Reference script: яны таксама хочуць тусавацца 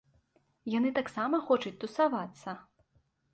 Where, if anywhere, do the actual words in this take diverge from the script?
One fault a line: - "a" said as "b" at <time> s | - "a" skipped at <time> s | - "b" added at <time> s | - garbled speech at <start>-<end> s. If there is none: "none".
none